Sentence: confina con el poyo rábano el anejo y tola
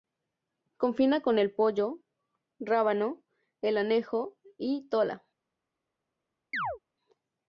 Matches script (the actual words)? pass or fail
pass